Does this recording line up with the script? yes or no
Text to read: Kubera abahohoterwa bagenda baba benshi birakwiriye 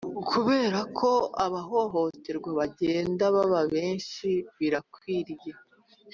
no